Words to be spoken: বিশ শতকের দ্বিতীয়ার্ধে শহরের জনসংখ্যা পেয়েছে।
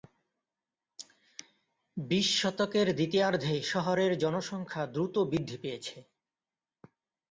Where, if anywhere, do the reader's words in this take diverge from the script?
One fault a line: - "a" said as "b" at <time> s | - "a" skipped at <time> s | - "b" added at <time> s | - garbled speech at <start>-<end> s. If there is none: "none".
- "দ্রুত বৃদ্ধি" added at 4.9 s